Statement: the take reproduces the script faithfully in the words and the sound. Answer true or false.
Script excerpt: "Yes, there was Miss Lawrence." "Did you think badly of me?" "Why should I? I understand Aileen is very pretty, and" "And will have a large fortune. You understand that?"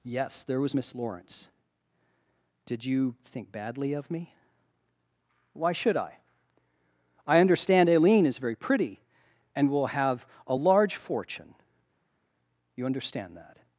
false